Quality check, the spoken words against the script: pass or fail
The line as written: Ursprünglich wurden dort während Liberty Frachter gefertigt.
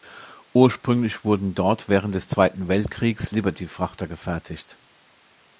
fail